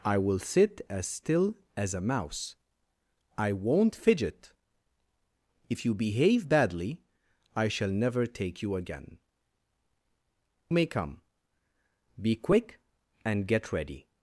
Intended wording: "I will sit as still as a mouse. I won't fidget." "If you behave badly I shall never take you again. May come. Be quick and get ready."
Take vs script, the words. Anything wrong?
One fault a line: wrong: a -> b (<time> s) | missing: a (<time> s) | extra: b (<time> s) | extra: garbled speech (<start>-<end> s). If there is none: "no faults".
no faults